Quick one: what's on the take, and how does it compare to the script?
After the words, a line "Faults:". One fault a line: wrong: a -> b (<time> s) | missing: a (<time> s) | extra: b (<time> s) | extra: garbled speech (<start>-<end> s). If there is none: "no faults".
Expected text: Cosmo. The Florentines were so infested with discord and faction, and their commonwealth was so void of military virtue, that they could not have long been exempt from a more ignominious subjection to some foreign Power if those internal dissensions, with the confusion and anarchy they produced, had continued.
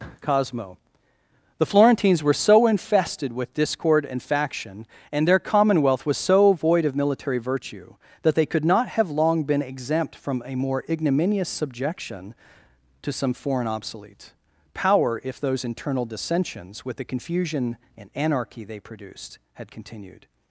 Cosmo. The Florentines were so infested with discord and faction, and their commonwealth was so void of military virtue, that they could not have long been exempt from a more ignominious subjection to some foreign obsolete Power if those internal dissensions, with the confusion and anarchy they produced, had continued.
Faults:
extra: obsolete (13.7 s)